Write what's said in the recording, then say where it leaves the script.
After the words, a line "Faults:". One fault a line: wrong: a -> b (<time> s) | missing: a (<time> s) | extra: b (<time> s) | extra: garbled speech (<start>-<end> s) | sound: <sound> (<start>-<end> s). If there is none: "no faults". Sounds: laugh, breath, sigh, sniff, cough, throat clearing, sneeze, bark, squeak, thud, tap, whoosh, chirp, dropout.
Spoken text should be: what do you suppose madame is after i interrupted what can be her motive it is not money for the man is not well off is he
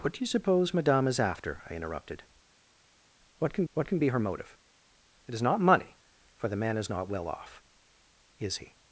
what do you suppose madame is after i interrupted what can what can be her motive it is not money for the man is not well off is he
Faults:
extra: what can (3.7 s)